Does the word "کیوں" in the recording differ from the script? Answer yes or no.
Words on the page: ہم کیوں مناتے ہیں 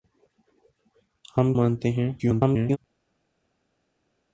yes